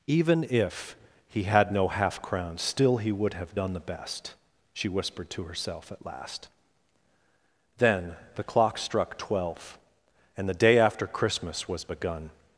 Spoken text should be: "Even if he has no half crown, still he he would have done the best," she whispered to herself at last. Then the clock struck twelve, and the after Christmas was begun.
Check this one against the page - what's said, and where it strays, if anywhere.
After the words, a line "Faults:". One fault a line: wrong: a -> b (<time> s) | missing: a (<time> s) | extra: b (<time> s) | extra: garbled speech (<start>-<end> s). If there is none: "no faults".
"Even if he had no half crown, still he would have done the best," she whispered to herself at last. Then the clock struck twelve, and the day after Christmas was begun.
Faults:
wrong: has -> had (1.4 s)
missing: he (3.1 s)
extra: day (10.5 s)